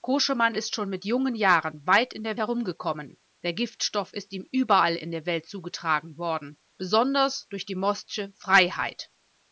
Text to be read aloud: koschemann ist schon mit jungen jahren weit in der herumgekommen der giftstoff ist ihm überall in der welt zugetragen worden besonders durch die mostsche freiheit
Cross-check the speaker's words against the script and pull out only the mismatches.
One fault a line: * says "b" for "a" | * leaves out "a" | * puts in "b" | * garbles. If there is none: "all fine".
all fine